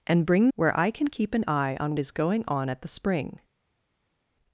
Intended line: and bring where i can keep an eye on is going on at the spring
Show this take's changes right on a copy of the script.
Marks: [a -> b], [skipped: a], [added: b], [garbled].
and bring where i can keep an eye on is going on at the spring